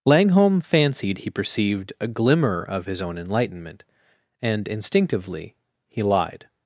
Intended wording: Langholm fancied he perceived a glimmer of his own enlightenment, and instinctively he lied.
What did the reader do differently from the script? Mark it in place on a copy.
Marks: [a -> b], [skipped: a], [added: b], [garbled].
Langholm fancied he perceived a glimmer of his own enlightenment, and instinctively he lied.